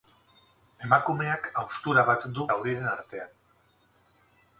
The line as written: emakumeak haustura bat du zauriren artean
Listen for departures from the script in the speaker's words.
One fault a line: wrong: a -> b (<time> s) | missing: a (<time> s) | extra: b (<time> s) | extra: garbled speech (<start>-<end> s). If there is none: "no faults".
no faults